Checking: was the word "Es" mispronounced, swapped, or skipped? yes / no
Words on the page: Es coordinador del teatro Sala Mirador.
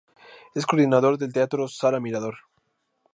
no